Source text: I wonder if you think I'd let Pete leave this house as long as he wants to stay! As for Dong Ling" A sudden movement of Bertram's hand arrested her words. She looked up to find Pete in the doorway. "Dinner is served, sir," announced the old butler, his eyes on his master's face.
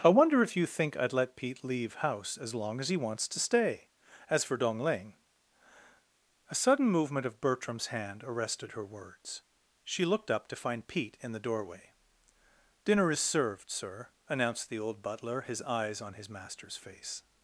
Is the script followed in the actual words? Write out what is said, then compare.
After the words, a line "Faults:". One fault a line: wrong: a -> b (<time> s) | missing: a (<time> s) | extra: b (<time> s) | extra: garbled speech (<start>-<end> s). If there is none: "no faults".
I wonder if you think I'd let Pete leave house as long as he wants to stay! As for Dong Ling" A sudden movement of Bertram's hand arrested her words. She looked up to find Pete in the doorway. "Dinner is served, sir," announced the old butler, his eyes on his master's face.
Faults:
missing: this (1.9 s)